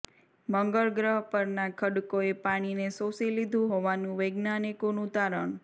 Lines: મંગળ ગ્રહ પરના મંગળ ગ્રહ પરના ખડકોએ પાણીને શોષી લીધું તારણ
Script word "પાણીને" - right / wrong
right